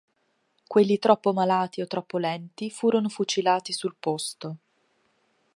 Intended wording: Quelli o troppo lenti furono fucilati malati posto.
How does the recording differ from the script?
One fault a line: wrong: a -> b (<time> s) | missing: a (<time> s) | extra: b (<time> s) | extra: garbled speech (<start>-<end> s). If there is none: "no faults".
extra: troppo malati (1.0 s)
wrong: malati -> sul (3.7 s)